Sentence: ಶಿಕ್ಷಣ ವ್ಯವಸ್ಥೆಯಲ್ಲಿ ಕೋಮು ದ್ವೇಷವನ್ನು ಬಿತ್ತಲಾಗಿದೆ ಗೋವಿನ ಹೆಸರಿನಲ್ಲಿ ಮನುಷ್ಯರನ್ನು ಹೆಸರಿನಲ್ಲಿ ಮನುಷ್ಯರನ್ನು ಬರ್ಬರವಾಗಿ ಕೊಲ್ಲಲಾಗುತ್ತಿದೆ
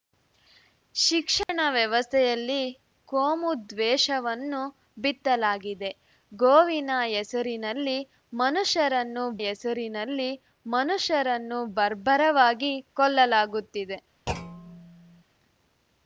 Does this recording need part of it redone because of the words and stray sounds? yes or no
yes